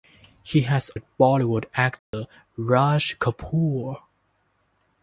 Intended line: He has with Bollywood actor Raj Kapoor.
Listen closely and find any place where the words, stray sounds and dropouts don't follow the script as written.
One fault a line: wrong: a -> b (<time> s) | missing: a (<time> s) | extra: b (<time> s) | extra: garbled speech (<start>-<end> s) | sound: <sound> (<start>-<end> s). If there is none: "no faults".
sound: dropout (2.0-2.1 s)